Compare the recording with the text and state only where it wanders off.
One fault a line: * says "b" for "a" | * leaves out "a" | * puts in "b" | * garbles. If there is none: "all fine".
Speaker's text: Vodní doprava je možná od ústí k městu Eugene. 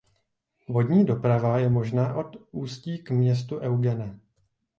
all fine